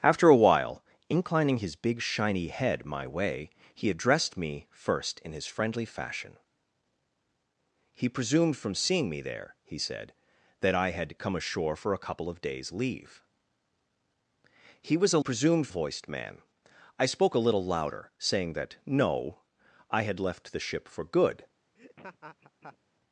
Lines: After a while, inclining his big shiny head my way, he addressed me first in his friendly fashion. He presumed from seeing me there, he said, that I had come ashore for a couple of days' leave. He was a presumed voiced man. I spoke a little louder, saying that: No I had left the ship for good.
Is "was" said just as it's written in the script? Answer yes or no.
yes